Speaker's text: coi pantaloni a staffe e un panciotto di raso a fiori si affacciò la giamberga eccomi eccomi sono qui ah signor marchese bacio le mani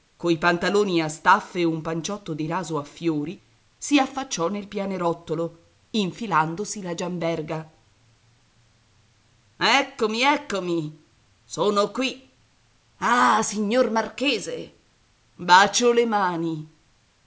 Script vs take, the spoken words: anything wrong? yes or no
yes